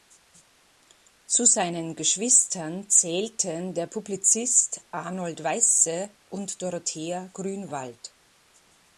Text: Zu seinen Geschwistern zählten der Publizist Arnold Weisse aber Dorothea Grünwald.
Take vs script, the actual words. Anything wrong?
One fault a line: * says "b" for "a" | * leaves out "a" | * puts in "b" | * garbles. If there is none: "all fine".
* says "und" for "aber"